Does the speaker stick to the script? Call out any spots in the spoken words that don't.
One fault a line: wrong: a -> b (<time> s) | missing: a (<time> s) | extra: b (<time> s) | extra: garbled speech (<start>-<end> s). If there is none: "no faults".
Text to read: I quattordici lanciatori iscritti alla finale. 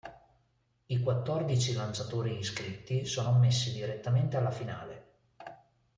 extra: sono ammessi direttamente (3.0 s)